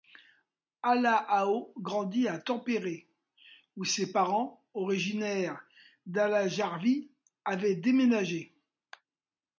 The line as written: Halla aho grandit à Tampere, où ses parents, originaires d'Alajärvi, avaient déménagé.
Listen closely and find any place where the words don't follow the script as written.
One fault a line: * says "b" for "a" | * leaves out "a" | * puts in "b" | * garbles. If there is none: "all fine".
all fine